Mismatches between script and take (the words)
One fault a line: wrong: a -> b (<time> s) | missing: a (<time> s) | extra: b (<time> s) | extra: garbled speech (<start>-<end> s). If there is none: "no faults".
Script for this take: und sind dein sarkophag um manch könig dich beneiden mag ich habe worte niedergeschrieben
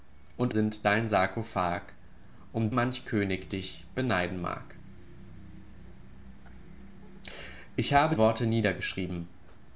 no faults